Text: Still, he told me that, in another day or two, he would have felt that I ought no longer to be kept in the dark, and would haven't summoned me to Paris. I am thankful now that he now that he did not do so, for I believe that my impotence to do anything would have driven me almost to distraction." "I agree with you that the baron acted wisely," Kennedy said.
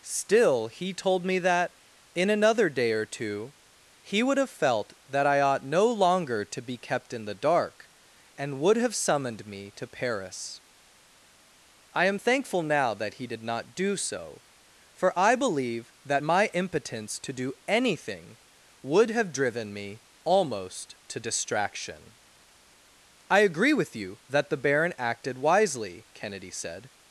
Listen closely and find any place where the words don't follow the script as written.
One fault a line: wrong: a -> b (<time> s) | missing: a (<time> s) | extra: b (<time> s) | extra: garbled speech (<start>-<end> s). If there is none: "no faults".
wrong: haven't -> have (8.8 s)
missing: now that he (13.3 s)